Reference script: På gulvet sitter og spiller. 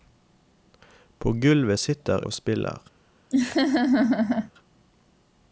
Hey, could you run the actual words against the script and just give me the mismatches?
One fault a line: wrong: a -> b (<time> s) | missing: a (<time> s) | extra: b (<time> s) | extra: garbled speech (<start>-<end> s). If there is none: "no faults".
no faults